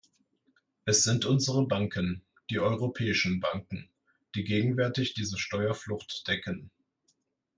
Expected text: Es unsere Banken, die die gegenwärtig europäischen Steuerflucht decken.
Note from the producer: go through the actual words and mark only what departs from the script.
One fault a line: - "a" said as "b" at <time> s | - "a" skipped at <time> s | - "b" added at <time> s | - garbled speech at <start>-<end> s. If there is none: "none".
- "sind" added at 1.0 s
- "europäischen Banken" added at 2.6 s
- "europäischen" said as "diese" at 5.1 s